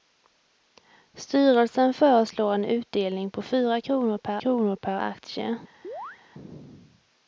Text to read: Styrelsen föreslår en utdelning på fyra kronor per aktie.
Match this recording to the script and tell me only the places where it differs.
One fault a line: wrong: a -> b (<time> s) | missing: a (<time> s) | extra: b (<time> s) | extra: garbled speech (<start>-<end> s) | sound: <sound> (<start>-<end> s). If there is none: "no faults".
extra: kronor per (4.4 s)
sound: chirp (5.8-6.2 s)